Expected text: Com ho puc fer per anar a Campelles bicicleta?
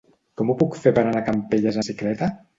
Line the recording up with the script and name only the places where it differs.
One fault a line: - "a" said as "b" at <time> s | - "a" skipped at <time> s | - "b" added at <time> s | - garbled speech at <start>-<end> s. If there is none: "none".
none